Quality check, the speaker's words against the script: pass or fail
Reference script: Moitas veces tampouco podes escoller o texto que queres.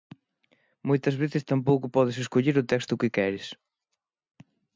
pass